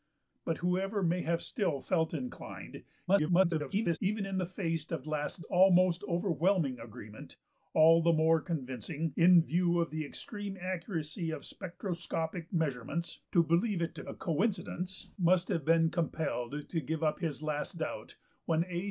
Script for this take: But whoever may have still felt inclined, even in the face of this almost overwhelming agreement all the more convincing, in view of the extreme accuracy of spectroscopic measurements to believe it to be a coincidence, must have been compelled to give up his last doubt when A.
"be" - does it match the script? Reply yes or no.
no